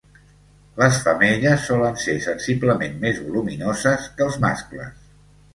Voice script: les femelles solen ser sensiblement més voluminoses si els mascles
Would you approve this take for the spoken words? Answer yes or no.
no